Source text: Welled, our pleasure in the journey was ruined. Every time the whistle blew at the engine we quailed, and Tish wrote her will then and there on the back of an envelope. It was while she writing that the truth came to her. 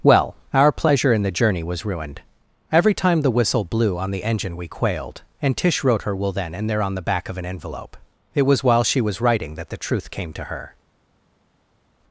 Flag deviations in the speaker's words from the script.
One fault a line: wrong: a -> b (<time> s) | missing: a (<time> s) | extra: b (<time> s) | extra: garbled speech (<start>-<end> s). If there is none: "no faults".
wrong: Welled -> Well (0.0 s)
wrong: at -> on (4.0 s)
extra: was (9.0 s)